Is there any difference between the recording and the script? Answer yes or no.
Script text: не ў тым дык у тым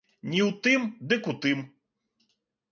no